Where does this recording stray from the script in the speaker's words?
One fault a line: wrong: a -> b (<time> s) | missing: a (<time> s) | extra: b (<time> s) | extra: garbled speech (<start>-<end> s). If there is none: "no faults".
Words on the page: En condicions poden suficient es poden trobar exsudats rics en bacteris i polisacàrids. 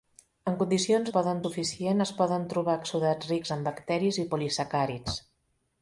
no faults